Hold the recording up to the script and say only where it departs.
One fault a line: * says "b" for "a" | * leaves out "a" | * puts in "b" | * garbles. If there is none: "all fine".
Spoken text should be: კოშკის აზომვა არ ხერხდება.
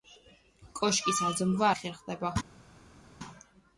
all fine